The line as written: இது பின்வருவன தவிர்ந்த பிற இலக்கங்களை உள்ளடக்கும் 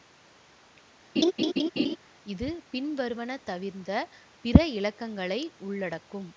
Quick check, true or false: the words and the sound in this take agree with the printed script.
false